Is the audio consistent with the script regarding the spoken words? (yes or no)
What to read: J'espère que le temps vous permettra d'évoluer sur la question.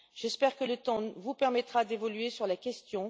yes